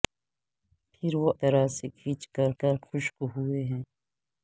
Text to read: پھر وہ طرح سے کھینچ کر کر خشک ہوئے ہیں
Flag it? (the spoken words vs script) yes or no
no